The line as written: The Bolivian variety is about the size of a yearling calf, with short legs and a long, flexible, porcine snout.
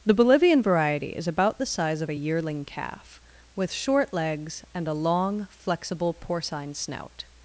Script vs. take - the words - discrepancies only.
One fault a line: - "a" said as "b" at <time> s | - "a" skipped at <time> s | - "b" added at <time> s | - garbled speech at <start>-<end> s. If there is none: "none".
none